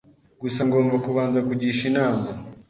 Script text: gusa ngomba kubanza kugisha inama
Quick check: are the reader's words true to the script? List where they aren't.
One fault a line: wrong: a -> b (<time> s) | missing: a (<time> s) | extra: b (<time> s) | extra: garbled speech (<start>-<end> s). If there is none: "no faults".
no faults